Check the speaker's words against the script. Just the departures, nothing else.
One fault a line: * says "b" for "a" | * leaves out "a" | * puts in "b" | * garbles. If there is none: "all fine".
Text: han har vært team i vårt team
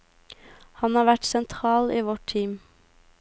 * says "sentral" for "team"